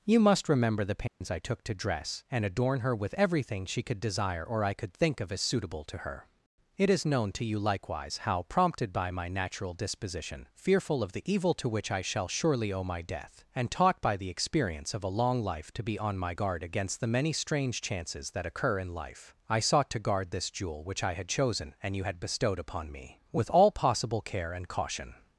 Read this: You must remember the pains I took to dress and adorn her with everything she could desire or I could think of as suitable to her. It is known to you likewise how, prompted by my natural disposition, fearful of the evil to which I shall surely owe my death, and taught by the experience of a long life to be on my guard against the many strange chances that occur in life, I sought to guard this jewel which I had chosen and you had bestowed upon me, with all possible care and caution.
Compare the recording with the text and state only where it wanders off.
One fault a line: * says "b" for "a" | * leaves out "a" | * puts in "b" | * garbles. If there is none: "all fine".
all fine